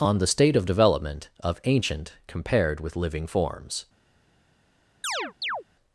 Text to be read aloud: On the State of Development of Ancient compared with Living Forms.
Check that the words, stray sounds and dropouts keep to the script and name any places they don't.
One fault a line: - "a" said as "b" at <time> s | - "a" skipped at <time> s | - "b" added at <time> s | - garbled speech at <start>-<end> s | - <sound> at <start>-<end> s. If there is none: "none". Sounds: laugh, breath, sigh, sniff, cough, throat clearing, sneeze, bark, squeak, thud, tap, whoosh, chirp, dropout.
- chirp at 5.0-5.6 s